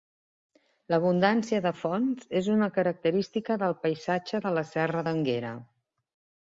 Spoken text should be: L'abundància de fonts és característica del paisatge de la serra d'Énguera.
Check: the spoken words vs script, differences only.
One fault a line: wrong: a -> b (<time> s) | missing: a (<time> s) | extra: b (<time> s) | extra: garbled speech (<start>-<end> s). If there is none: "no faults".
extra: una (2.5 s)